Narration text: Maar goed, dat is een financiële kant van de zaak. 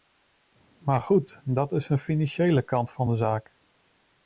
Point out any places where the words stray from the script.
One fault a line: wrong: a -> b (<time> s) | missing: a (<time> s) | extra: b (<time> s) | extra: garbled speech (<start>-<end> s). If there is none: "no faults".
no faults